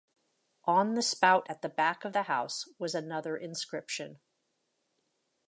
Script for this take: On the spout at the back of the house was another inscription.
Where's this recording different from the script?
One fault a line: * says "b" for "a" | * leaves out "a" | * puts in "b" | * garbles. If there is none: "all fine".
all fine